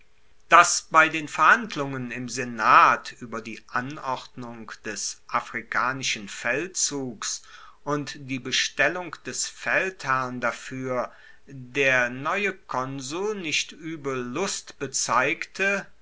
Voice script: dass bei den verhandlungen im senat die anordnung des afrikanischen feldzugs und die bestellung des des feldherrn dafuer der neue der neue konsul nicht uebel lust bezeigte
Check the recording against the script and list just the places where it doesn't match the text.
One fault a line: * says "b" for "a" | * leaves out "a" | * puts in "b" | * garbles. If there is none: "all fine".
* puts in "ueber"
* leaves out "des"
* leaves out "der neue"